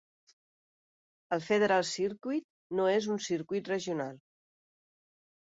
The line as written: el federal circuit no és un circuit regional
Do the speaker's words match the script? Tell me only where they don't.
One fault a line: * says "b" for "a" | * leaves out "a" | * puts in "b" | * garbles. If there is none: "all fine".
all fine